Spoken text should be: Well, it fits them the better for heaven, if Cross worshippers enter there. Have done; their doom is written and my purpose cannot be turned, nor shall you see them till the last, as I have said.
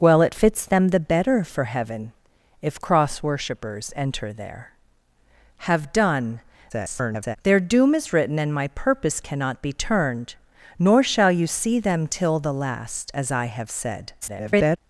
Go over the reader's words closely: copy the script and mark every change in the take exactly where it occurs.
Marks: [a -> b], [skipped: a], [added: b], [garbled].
Well, it fits them the better for heaven, if Cross worshippers enter there. Have done; [garbled] their doom is written and my purpose cannot be turned, nor shall you see them till the last, as I have said. [garbled]